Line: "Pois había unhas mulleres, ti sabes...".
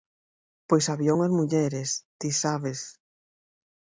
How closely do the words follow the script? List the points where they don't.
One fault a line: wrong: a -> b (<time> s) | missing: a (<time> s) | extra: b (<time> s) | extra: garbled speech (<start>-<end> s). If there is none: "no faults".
no faults